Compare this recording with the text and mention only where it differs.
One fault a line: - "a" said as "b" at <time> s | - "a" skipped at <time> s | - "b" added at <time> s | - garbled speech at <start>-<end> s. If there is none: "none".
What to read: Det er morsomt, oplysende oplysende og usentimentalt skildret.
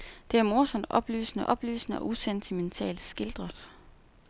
none